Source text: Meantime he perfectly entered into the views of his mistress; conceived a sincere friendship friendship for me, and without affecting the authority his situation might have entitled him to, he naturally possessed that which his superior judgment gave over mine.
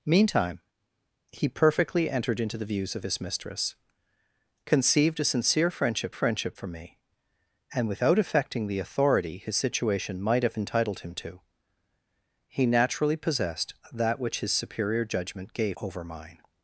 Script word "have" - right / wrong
right